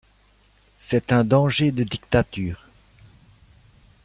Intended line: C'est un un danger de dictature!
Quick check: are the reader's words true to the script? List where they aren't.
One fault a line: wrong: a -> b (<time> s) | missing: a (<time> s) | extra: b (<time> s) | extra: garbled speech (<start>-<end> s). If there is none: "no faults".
missing: un (1.2 s)